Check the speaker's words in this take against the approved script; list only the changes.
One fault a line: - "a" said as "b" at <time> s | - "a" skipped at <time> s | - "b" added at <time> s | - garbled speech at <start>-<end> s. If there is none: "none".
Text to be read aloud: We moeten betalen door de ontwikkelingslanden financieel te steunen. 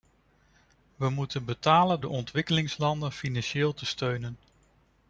- "door" skipped at 2.0 s